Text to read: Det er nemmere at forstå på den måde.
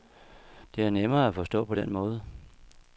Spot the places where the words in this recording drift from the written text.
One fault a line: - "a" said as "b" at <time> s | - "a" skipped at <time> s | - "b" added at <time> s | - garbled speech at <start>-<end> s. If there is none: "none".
none